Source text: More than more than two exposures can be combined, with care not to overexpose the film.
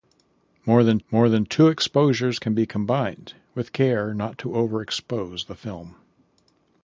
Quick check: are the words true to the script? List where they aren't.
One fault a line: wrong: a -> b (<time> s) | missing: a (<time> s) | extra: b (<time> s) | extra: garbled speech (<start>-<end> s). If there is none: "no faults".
no faults